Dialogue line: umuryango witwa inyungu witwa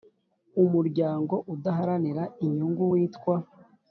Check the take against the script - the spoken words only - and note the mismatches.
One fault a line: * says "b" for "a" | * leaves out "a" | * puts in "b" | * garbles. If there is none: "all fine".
* says "udaharanira" for "witwa"